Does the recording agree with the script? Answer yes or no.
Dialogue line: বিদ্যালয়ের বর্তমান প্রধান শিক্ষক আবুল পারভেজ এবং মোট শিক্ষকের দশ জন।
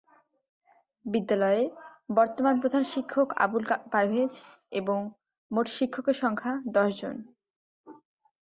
no